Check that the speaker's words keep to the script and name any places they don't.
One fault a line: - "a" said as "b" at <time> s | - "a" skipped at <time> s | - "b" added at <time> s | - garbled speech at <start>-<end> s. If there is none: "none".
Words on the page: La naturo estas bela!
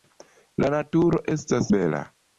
none